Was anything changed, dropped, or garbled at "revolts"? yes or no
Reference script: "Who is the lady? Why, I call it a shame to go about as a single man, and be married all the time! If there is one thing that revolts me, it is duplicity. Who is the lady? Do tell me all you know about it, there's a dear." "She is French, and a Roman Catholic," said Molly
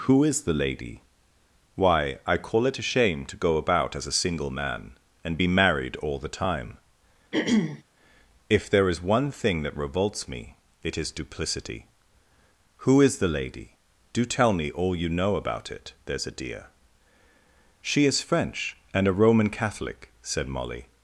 no